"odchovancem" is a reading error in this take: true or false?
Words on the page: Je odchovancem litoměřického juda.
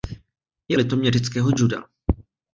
true